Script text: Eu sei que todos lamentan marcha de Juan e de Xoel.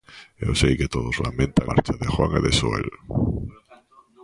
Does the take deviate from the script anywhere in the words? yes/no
no